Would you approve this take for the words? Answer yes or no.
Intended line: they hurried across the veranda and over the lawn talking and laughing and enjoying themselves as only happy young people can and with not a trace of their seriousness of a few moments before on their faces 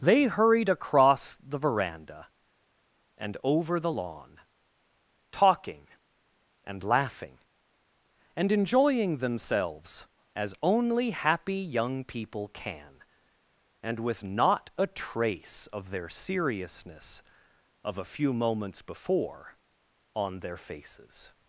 yes